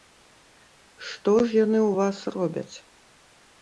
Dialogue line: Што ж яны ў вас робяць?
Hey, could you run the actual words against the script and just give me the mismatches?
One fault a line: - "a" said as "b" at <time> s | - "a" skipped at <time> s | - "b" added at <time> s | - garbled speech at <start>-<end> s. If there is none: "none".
none